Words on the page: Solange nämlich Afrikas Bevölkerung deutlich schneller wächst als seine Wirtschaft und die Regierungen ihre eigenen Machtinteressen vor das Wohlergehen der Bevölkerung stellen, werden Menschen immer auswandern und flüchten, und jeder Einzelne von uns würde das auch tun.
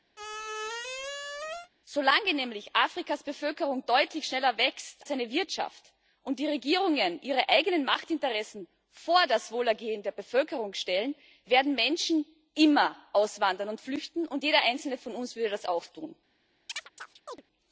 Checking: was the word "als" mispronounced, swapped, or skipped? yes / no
yes